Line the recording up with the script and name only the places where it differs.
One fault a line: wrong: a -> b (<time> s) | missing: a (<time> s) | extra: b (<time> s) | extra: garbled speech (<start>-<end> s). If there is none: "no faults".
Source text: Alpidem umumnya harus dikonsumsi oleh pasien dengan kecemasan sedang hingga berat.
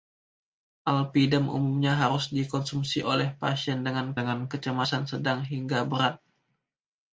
extra: dengan (4.2 s)